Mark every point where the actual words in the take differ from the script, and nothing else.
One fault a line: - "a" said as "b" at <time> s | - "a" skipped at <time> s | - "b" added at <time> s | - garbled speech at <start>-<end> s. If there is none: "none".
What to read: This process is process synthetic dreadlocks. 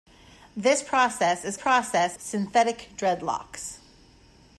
none